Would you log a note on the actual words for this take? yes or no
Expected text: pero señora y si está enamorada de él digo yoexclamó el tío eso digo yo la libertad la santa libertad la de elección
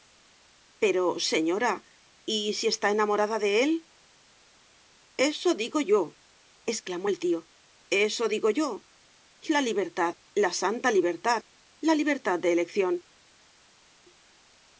yes